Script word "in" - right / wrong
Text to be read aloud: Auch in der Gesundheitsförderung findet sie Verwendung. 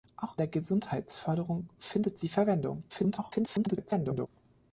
wrong